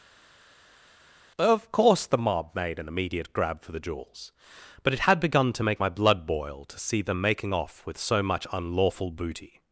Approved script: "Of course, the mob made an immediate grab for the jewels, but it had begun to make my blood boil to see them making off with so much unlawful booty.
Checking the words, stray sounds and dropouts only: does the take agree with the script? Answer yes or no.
yes